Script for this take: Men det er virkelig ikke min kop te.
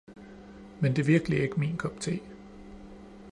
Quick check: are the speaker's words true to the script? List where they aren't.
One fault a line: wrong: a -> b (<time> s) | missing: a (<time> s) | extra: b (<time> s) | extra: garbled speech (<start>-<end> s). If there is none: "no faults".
no faults